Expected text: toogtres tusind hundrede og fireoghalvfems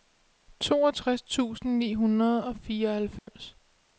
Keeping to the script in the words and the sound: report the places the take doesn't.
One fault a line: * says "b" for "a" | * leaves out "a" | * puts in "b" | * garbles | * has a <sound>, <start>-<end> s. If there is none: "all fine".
* puts in "ni"
* has a dropout, 3.2-3.3 s